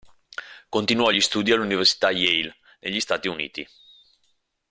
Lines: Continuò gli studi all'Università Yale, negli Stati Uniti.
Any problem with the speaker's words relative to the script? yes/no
no